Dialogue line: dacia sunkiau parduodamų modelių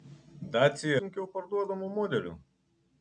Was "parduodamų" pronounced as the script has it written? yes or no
yes